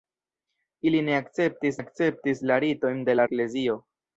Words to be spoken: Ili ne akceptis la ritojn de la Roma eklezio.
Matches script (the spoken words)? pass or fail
fail